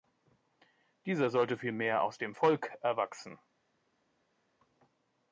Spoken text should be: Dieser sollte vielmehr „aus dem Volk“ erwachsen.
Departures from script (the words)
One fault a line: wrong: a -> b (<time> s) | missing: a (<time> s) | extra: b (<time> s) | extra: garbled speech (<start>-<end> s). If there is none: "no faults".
no faults